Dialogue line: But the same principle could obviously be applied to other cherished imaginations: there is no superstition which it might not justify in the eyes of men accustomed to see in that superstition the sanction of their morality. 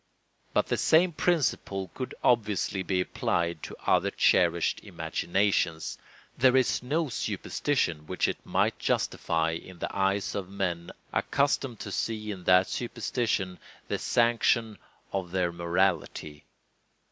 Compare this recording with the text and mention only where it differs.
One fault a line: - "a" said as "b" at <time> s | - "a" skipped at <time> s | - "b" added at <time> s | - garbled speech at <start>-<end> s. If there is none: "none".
- "not" skipped at 8.7 s